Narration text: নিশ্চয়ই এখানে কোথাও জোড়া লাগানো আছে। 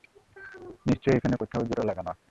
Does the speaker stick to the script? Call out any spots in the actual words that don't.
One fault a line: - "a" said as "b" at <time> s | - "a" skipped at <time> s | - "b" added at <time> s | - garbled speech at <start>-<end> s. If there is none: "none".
none